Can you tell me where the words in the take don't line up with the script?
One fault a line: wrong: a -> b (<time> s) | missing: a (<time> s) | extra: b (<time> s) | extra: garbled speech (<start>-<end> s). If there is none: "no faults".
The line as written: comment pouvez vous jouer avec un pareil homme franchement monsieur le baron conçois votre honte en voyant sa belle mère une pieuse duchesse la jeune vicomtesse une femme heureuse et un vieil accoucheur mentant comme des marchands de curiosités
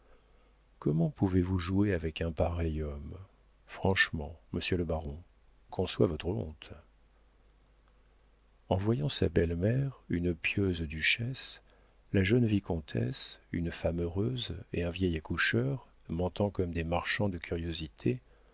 no faults